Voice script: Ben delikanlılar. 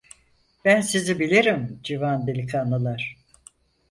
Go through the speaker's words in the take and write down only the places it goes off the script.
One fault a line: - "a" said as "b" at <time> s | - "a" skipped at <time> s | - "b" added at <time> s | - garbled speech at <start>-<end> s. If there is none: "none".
- "sizi bilirim civan" added at 0.8 s